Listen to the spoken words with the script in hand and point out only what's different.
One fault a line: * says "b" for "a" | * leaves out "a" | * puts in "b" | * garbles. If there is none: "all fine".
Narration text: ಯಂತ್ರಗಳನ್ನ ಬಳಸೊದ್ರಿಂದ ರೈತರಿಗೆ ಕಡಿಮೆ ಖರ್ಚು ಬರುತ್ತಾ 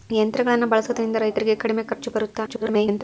* garbles